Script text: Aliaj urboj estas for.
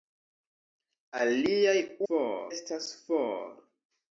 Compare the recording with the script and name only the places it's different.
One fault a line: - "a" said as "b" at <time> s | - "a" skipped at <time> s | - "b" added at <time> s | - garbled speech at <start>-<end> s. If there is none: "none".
- "urboj" said as "for" at 2.1 s